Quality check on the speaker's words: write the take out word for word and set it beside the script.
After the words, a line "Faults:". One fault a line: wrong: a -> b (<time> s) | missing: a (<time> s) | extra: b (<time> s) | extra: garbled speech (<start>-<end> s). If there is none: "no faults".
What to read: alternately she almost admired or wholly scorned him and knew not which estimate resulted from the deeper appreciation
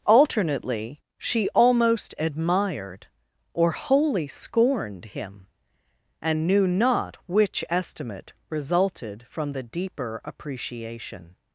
alternately she almost admired or wholly scorned him and knew not which estimate resulted from the deeper appreciation
Faults:
no faults